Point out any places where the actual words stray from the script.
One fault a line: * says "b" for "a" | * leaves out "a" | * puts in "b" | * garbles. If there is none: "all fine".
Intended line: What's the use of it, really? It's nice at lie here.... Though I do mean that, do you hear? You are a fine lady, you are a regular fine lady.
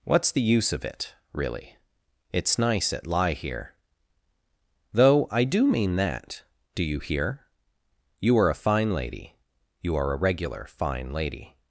all fine